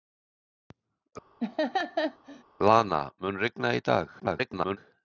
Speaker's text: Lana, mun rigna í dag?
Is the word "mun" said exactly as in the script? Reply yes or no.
yes